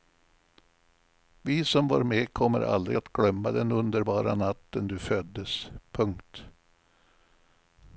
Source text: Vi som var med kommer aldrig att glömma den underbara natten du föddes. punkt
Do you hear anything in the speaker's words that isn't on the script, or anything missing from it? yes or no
no